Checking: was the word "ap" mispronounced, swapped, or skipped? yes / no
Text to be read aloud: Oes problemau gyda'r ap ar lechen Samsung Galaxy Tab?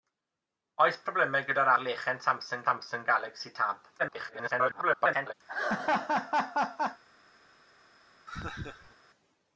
yes